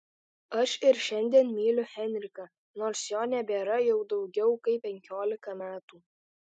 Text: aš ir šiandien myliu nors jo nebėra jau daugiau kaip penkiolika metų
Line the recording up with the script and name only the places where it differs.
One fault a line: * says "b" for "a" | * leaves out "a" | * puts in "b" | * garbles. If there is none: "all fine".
* puts in "henriką"